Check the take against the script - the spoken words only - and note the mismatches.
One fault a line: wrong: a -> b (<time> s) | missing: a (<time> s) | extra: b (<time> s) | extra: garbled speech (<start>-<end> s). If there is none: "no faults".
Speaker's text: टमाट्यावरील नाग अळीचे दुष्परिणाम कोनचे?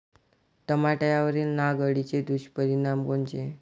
no faults